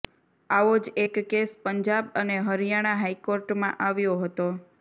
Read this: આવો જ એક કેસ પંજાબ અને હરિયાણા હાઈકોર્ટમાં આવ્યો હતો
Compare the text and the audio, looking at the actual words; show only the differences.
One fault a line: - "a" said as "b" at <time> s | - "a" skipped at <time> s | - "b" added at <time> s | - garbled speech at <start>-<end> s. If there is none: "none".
none